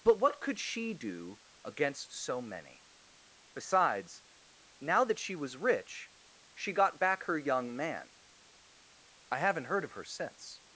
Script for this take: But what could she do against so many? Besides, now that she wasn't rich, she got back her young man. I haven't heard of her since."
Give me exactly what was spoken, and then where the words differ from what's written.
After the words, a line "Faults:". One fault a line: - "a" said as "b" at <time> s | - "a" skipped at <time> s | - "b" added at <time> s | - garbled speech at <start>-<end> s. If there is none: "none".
But what could she do against so many? Besides, now that she was rich, she got back her young man. I haven't heard of her since."
Faults:
- "wasn't" said as "was" at 5.3 s